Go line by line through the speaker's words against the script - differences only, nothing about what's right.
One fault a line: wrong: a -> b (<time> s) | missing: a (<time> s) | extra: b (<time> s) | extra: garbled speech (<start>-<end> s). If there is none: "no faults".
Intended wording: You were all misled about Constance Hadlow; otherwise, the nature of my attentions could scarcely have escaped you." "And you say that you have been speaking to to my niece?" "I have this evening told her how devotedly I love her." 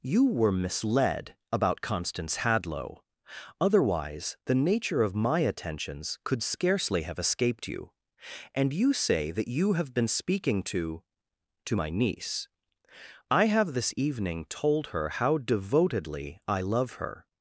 missing: all (0.5 s)